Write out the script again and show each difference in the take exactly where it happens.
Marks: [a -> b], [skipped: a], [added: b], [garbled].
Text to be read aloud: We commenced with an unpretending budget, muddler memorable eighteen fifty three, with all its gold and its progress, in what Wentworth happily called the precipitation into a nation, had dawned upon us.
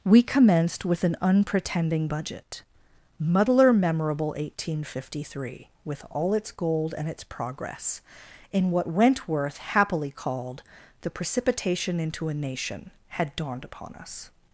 We commenced with an unpretending budget, muddler memorable eighteen fifty three, with all its gold and its progress, in what Wentworth happily called the precipitation into a nation, had dawned upon us.